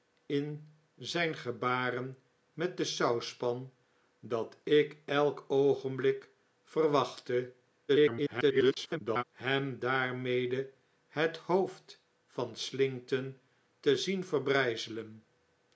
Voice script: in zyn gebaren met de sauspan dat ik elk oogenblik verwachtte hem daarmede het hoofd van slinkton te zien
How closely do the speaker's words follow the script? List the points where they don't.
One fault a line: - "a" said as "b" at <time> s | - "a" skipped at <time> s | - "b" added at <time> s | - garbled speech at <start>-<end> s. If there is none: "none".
- garbled speech at 7.9-9.2 s